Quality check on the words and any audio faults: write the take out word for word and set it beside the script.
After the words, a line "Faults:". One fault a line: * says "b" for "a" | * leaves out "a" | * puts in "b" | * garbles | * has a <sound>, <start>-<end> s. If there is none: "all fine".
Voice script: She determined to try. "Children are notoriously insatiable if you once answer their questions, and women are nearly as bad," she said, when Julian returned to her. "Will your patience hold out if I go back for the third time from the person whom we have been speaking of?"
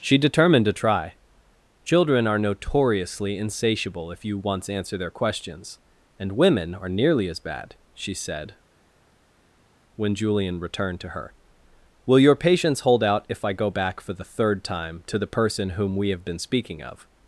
She determined to try. "Children are notoriously insatiable if you once answer their questions, and women are nearly as bad," she said, when Julian returned to her. "Will your patience hold out if I go back for the third time to the person whom we have been speaking of?"
Faults:
* says "to" for "from"